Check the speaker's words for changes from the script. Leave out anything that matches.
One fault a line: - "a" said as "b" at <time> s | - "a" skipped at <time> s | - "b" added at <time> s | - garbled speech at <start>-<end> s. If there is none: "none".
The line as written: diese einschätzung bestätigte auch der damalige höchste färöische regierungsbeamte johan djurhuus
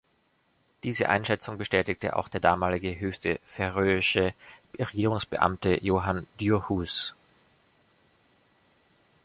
none